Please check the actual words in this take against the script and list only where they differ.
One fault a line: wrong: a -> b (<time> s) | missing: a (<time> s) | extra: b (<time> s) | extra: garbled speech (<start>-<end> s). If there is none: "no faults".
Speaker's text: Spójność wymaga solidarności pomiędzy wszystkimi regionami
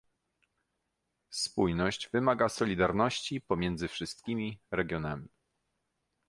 no faults